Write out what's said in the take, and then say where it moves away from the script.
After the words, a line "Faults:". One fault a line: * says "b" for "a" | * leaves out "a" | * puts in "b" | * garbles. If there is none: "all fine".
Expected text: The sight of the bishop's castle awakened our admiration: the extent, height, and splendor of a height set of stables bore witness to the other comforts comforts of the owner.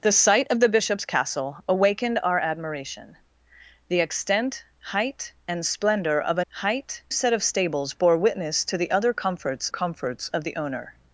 The sight of the bishop's castle awakened our admiration: the extent, height, and splendor of a height set of stables bore witness to the other comforts comforts of the owner.
Faults:
all fine